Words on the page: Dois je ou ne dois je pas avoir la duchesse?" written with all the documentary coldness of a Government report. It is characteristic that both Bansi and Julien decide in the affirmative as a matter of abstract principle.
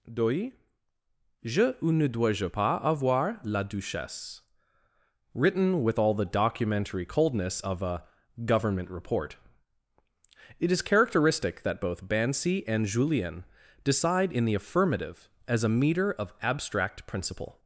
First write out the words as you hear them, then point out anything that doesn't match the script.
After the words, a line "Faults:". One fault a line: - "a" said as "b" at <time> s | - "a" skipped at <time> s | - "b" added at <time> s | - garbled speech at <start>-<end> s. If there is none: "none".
Dois je ou ne dois je pas avoir la duchesse?" written with all the documentary coldness of a Government report. It is characteristic that both Bansi and Julien decide in the affirmative as a meter of abstract principle.
Faults:
- "matter" said as "meter" at 15.7 s